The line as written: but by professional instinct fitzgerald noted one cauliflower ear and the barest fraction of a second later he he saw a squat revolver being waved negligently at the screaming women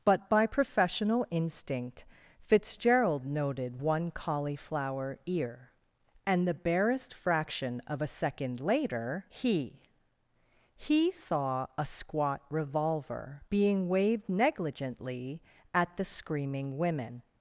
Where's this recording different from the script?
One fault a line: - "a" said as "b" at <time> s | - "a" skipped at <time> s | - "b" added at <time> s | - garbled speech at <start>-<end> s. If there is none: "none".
none